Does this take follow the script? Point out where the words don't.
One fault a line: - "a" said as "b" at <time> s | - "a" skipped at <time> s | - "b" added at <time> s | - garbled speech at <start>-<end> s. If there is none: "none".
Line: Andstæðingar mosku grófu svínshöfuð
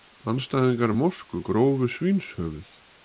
none